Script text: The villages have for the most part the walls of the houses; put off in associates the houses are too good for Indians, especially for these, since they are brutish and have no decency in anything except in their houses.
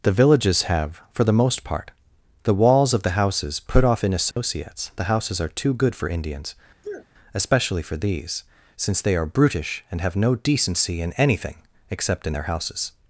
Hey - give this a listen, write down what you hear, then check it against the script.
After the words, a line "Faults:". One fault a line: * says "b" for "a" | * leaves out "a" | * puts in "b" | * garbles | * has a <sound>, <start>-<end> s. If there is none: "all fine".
The villages have for the most part the walls of the houses; put off in associates the houses are too good for Indians, especially for these, since they are brutish and have no decency in anything except in their houses.
Faults:
* has a dropout, 4.3-4.4 s
* has a sneeze, 6.8-7.1 s